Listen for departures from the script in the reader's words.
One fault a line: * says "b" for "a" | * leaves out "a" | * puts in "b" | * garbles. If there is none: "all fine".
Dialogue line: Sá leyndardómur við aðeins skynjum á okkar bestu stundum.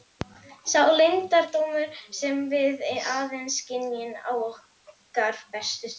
* puts in "sem"